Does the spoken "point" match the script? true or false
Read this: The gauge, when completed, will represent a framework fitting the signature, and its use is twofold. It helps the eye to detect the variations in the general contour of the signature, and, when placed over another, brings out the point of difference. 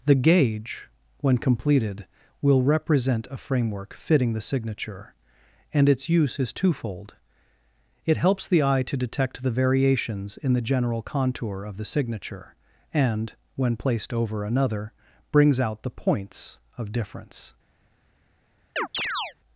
false